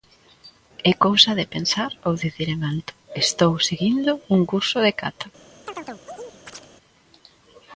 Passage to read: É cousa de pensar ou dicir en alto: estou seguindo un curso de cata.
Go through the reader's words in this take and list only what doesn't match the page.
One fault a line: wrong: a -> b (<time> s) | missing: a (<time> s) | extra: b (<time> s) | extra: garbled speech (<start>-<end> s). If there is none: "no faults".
no faults